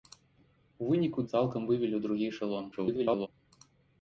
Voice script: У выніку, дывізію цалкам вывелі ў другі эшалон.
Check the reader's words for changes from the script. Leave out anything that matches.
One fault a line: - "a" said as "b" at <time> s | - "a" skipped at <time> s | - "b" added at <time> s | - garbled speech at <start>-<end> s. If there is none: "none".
- "дывізію" skipped at 1.2 s
- garbled speech at 2.7-3.3 s